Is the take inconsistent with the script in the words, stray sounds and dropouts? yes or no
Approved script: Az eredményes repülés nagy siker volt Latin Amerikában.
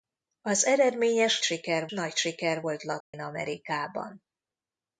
yes